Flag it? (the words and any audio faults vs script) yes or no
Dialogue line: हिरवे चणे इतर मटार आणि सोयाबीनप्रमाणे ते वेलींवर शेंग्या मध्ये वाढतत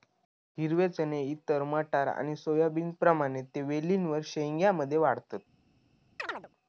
yes